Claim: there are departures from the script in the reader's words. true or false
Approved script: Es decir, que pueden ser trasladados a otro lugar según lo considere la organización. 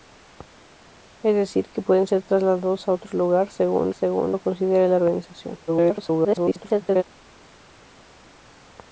true